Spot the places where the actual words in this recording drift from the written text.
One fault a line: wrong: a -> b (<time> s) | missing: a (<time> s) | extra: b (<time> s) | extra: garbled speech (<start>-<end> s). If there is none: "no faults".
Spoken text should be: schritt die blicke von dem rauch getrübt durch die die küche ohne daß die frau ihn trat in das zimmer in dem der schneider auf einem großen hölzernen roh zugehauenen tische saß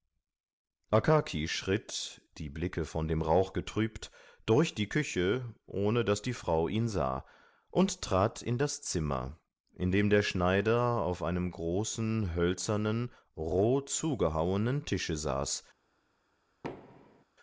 missing: die (4.9 s)
extra: sah und (6.9 s)